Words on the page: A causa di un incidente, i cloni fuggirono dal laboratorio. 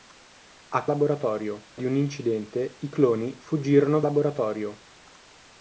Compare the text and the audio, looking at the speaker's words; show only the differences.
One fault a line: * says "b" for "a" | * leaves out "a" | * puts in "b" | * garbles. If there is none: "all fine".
* says "laboratorio" for "causa"
* leaves out "dal"